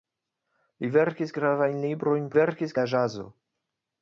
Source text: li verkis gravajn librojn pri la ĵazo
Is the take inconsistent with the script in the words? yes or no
yes